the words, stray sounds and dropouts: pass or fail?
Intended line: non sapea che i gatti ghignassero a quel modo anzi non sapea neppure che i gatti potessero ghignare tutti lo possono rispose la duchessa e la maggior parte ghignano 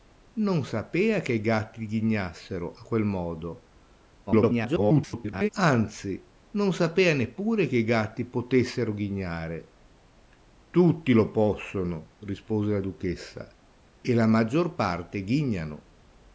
fail